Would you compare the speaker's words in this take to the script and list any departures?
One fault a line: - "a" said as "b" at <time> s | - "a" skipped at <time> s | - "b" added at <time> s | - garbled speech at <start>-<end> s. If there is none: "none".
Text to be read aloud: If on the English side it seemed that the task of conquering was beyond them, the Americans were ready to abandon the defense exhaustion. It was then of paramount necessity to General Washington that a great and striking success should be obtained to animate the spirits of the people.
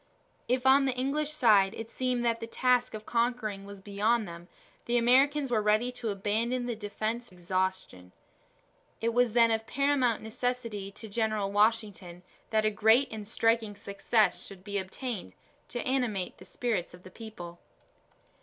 none